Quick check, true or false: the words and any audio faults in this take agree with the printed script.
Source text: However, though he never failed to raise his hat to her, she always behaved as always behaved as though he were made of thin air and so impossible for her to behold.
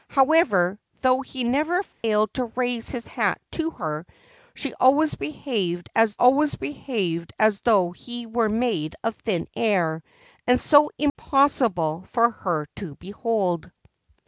false